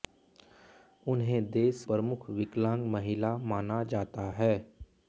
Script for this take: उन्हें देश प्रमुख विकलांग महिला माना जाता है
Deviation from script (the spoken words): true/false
false